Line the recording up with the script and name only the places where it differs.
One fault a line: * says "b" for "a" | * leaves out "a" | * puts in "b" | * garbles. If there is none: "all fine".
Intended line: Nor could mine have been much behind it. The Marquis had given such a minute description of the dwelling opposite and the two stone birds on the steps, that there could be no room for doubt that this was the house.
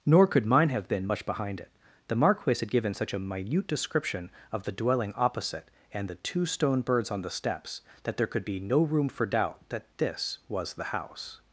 all fine